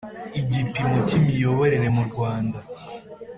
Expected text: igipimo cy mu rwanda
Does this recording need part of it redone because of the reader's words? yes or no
yes